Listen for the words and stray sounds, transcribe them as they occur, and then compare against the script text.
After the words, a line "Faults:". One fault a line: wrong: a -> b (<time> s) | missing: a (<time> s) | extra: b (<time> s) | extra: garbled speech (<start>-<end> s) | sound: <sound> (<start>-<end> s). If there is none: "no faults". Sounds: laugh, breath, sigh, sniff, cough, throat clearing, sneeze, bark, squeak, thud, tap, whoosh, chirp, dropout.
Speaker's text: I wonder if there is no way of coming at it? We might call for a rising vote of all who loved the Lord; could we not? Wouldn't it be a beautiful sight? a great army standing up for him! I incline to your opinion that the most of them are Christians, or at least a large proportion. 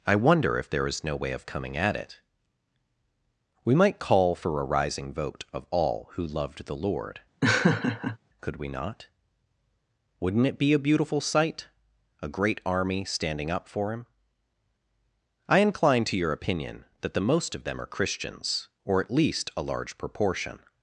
I wonder if there is no way of coming at it? We might call for a rising vote of all who loved the Lord; could we not? Wouldn't it be a beautiful sight? a great army standing up for him! I incline to your opinion that the most of them are Christians, or at least a large proportion.
Faults:
sound: laugh (7.4-8.2 s)